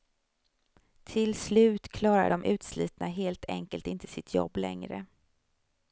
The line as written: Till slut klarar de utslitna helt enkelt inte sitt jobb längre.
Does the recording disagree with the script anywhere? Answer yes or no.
no